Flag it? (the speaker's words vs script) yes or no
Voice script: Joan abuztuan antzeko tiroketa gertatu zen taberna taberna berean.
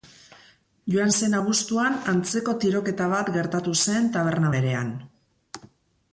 yes